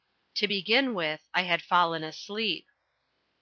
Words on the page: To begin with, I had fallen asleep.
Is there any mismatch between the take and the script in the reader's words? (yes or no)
no